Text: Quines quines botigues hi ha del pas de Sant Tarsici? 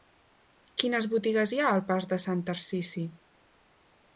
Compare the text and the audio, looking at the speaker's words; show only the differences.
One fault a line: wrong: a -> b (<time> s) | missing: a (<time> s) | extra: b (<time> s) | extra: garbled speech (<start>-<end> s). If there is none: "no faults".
missing: quines (1.1 s)
wrong: del -> al (1.7 s)